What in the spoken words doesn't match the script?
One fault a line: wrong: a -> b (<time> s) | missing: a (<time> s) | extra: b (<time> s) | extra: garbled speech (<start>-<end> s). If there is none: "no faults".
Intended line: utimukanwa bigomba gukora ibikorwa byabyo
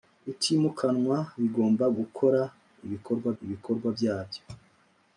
extra: ibikorwa (3.4 s)